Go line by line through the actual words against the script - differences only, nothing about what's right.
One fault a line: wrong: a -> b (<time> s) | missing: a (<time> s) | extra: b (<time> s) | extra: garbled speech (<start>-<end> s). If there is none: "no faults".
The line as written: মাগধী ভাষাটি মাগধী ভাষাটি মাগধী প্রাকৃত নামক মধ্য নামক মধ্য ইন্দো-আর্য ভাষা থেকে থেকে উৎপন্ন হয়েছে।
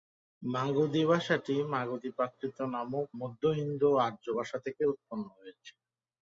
missing: ভাষাটি মাগধী (2.1 s)
missing: নামক মধ্য (3.4 s)
missing: থেকে (4.8 s)